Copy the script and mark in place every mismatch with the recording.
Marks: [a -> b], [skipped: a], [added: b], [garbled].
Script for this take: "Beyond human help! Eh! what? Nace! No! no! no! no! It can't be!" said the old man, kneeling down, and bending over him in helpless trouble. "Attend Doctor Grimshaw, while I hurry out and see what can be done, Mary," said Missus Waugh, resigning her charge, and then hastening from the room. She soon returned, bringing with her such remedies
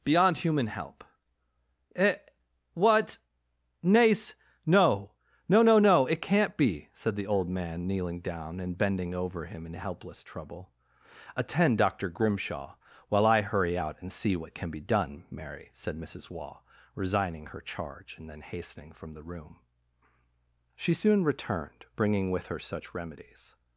"Beyond human help! Eh! what? Nace! No! no! no! no! It can't be!" said the old man, kneeling down, and bending over him in helpless trouble. "Attend Doctor Grimshaw, while I hurry out and see what can be done, Mary," said Missus Waugh, resigning her charge, and then hastening from the room. She soon returned, bringing with her such remedies